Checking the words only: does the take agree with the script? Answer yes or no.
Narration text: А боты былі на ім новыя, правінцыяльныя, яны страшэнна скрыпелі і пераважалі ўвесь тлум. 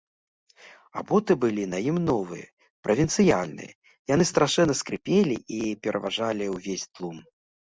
yes